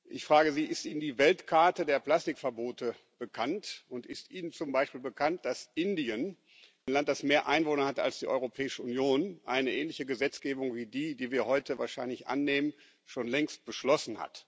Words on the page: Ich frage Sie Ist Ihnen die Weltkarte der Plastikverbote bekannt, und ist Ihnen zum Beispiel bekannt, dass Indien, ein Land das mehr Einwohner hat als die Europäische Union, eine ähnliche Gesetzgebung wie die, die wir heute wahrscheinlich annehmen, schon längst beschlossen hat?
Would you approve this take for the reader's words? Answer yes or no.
yes